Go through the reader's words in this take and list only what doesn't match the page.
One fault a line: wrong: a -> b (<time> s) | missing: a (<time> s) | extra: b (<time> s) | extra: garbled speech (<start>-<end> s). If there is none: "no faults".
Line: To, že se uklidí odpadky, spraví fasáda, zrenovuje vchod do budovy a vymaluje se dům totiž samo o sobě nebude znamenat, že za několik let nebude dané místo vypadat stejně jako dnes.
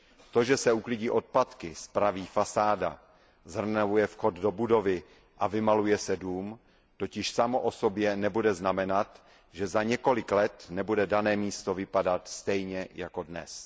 no faults